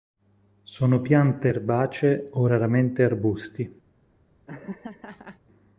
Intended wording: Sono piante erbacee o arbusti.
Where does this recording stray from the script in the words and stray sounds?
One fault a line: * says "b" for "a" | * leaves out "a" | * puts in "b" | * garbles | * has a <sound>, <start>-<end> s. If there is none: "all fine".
* puts in "raramente"
* has a laugh, 4.5-5.4 s